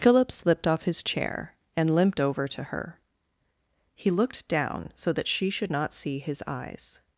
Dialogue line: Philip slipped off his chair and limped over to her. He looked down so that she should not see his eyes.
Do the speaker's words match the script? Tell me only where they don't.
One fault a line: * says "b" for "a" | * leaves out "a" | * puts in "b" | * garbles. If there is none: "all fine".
all fine